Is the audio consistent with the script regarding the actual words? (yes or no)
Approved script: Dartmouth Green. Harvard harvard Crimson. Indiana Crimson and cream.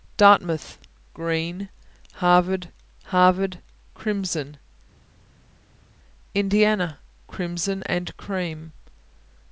yes